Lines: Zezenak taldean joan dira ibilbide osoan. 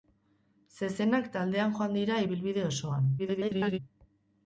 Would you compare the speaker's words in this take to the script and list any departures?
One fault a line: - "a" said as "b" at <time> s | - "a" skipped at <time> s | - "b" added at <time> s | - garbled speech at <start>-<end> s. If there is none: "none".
- garbled speech at 3.2-3.8 s